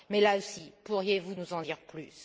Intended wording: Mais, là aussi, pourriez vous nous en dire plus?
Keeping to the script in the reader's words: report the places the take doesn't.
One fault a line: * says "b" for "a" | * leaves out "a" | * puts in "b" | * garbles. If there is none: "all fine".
all fine